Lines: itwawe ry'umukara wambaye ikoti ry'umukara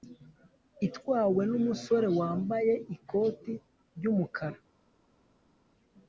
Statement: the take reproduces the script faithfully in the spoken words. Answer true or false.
false